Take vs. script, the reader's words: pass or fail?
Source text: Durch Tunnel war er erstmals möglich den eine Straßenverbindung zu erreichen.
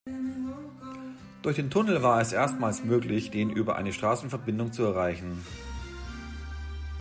fail